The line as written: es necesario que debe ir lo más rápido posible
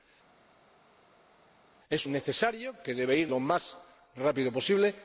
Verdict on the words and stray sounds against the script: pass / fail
pass